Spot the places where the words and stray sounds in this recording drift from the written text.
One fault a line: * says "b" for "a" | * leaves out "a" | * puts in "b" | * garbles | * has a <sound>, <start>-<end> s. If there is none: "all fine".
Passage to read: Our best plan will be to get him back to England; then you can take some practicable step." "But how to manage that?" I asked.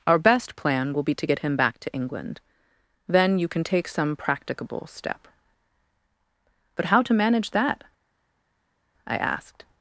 all fine